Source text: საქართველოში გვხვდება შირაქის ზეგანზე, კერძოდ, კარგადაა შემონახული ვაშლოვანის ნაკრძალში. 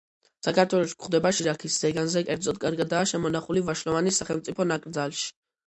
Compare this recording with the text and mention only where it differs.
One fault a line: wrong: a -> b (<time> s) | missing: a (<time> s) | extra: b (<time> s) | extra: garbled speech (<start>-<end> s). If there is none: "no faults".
extra: სახელმწიფო (4.2 s)